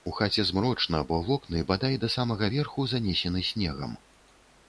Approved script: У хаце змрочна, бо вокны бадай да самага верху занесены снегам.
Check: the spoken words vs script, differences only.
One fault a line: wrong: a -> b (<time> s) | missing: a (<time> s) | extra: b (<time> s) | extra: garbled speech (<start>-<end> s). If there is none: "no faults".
no faults